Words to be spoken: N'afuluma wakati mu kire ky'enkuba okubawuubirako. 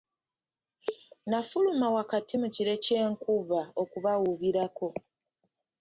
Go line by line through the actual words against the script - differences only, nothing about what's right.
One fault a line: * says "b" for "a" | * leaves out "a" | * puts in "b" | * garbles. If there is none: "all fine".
all fine